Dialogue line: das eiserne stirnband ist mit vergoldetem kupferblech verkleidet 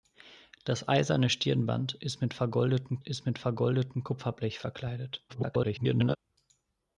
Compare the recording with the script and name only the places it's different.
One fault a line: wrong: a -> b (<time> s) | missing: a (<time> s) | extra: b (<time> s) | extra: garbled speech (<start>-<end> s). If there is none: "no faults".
extra: ist mit vergoldetem (3.0 s)
extra: garbled speech (5.3-6.2 s)